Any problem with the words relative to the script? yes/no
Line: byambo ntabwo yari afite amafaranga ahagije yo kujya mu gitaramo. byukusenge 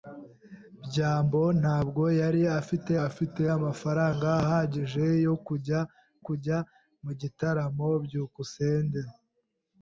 yes